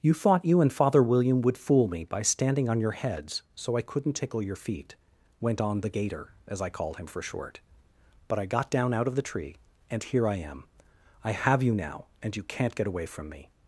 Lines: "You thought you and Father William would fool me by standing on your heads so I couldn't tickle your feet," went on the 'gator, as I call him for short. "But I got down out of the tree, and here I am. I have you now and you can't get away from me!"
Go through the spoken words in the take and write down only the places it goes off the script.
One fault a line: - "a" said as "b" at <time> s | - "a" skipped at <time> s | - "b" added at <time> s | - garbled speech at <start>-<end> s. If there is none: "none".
- "call" said as "called" at 6.7 s